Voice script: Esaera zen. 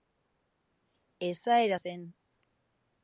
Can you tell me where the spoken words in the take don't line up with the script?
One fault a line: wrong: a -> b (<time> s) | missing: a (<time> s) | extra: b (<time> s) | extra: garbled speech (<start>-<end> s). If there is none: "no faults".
no faults